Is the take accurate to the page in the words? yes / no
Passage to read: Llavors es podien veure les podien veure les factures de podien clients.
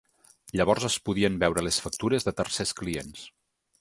no